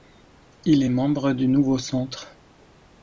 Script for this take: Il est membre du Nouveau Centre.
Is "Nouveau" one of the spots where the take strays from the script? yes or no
no